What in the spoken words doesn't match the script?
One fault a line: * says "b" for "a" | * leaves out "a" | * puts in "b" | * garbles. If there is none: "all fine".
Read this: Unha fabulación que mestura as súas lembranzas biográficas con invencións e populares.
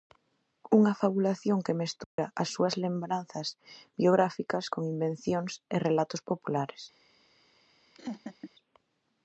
* puts in "relatos"